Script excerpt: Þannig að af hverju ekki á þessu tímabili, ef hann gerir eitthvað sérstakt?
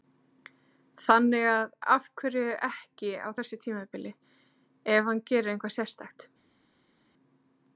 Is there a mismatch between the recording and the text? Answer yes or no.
no